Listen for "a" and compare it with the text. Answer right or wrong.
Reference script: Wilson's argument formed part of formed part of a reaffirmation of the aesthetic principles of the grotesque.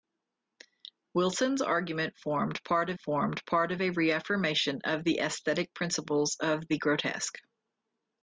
right